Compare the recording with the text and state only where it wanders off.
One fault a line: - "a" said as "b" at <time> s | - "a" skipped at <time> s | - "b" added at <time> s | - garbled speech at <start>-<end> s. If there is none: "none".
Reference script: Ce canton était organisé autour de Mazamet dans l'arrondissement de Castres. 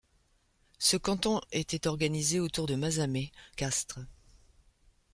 - "dans l'arrondissement de" skipped at 3.3 s